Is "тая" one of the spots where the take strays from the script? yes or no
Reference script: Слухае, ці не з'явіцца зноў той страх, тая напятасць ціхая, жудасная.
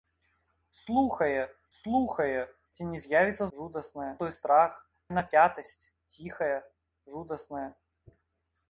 yes